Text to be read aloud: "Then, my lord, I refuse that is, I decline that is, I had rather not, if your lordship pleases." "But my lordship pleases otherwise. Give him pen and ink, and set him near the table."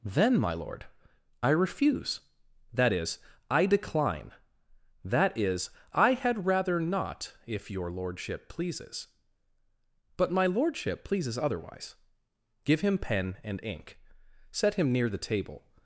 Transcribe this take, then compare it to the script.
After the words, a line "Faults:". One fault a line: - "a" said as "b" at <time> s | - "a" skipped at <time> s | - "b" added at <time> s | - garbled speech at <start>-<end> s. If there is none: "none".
"Then, my lord, I refuse that is, I decline that is, I had rather not, if your lordship pleases." "But my lordship pleases otherwise. Give him pen and ink, set him near the table."
Faults:
- "and" skipped at 14.0 s